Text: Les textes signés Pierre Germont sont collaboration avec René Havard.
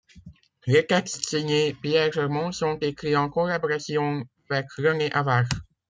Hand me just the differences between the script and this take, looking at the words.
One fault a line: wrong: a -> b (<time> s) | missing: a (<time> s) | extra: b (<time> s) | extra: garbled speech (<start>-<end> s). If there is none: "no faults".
extra: écrits en (2.8 s)